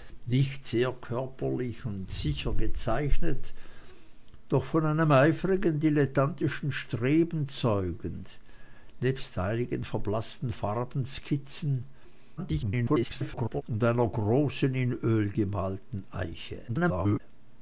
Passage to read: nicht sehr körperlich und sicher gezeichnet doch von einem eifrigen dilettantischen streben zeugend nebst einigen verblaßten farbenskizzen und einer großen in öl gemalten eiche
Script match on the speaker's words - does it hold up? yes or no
no